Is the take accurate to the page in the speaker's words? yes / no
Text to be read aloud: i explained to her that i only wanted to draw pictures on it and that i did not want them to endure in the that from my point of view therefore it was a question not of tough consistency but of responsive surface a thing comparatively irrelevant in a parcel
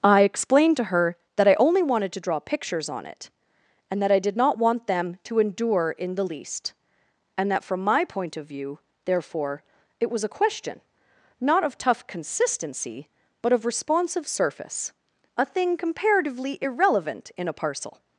no